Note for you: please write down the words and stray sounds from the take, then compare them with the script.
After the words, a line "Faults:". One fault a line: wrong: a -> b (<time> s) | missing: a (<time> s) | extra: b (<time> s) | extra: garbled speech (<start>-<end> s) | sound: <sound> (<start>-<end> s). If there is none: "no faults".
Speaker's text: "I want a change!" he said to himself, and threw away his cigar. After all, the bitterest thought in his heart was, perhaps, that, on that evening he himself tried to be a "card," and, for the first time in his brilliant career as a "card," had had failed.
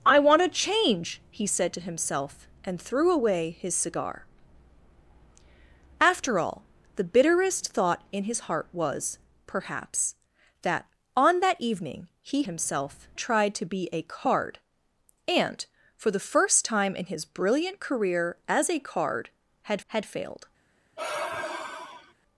"I want a change!" he said to himself, and threw away his cigar. After all, the bitterest thought in his heart was, perhaps, that, on that evening he himself tried to be a "card," and, for the first time in his brilliant career as a "card," had had failed.
Faults:
sound: sigh (21.0-22.1 s)